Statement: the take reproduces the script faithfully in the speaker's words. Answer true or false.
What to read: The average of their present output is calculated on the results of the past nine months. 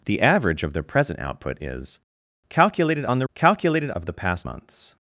false